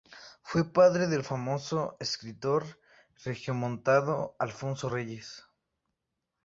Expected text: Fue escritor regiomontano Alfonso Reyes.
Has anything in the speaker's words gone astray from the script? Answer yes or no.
yes